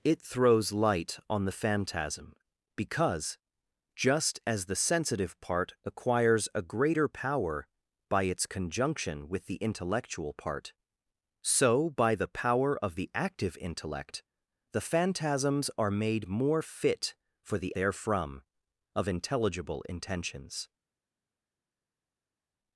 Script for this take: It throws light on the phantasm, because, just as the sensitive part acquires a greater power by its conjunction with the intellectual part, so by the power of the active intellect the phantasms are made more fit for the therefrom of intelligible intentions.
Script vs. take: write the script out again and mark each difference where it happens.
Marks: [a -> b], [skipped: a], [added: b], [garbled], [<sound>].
It throws light on the phantasm, because, just as the sensitive part acquires a greater power by its conjunction with the intellectual part, so by the power of the active intellect the phantasms are made more fit for the therefrom of intelligible intentions.